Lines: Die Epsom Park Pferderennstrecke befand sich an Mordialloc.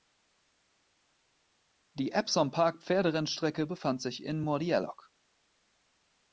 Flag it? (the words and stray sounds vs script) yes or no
yes